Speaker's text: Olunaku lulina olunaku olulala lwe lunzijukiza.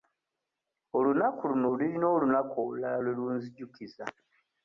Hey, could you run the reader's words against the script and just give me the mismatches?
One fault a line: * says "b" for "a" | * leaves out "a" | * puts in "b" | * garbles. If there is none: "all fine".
* puts in "luno"